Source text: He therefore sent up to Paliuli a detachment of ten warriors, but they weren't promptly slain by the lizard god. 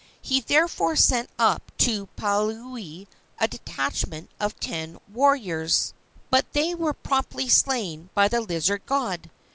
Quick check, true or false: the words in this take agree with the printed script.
false